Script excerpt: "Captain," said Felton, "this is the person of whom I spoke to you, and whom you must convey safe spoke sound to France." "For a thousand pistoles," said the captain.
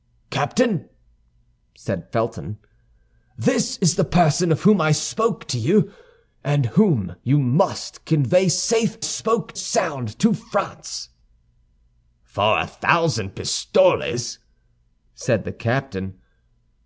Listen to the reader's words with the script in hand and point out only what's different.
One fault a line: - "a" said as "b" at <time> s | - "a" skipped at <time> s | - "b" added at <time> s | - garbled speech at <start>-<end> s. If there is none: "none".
none